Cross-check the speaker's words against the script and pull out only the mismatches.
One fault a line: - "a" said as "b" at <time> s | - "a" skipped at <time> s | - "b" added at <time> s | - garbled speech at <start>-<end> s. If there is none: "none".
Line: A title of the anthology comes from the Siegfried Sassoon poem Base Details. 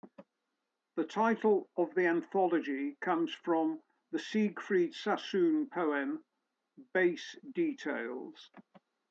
- "A" said as "The" at 0.9 s